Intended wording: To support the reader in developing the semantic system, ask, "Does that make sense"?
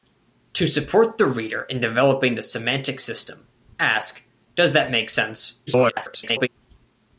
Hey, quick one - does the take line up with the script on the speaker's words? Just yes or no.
no